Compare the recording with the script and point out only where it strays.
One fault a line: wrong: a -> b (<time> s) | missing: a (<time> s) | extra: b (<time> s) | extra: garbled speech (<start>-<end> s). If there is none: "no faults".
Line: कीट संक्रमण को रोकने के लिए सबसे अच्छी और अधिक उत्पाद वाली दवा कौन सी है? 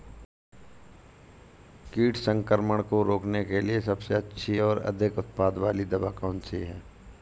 no faults